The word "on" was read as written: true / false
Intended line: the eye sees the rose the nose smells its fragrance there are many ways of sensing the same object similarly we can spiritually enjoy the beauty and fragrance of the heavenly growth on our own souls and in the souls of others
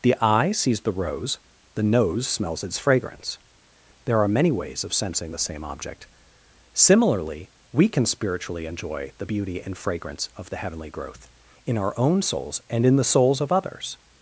false